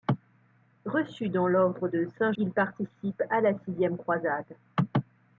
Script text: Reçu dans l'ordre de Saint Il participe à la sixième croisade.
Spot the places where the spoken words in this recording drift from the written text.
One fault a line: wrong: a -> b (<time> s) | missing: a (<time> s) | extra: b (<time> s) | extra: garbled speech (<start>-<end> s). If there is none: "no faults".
no faults